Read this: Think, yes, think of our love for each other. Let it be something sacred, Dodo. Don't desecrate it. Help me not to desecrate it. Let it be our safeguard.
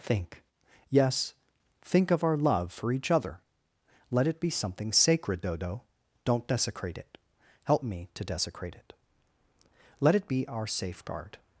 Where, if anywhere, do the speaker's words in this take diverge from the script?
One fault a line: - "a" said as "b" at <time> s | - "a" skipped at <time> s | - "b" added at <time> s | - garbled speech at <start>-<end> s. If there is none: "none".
- "not" skipped at 8.1 s